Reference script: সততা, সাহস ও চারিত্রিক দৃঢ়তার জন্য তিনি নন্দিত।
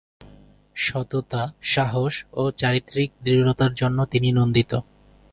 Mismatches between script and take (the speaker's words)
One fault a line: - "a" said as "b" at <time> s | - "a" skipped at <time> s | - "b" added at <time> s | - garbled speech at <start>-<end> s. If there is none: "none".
none